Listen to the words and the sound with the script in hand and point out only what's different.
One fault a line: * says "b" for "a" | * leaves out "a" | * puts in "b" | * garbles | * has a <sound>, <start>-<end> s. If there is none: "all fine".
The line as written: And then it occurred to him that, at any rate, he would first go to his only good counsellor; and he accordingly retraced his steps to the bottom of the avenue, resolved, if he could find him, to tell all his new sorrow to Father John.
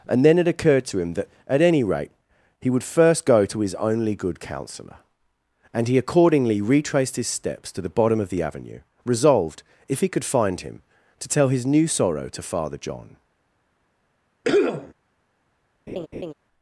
* leaves out "all"
* has a cough, 14.4-14.9 s
* has a laugh, 15.9-16.3 s